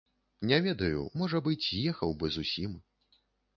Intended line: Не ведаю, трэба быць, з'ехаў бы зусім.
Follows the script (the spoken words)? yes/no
no